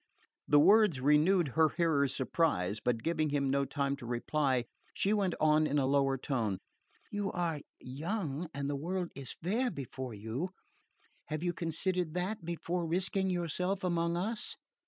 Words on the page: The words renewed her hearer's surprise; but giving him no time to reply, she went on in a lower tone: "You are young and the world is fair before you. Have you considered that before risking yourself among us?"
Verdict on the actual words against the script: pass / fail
pass